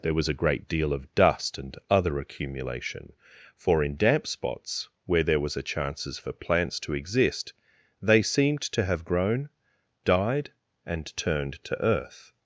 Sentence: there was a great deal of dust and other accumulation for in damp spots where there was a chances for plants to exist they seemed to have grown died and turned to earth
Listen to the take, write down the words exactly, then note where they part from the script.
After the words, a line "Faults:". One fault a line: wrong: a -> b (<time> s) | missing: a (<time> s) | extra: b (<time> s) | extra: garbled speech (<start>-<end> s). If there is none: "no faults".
there was a great deal of dust and other accumulation for in damp spots where there was a chances for plants to exist they seemed to have grown died and turned to earth
Faults:
no faults